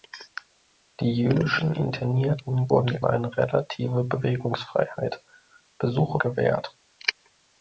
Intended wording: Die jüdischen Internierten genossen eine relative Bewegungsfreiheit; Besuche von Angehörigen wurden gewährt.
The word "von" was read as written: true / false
false